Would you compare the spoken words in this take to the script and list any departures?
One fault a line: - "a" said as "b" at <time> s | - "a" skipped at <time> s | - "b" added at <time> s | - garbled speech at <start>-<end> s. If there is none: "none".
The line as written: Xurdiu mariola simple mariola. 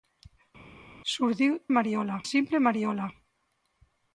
none